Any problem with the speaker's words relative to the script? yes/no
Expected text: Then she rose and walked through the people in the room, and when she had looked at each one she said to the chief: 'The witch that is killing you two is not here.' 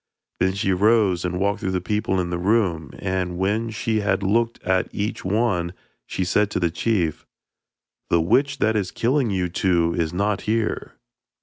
no